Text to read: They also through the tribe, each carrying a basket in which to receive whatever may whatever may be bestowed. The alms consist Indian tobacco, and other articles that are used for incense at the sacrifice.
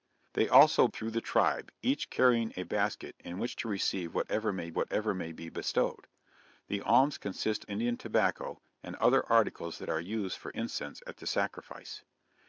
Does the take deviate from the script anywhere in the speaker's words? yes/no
no